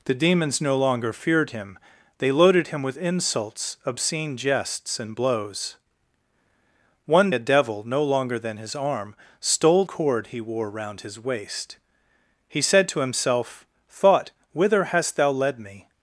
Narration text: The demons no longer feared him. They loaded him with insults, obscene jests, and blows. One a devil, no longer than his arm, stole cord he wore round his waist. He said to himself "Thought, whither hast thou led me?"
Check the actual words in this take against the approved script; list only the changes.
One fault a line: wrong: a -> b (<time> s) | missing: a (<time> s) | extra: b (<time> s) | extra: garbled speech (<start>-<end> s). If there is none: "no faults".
no faults